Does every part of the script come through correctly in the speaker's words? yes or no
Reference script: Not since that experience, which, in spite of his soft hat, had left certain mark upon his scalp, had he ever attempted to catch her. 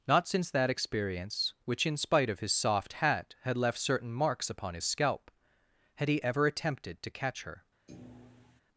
no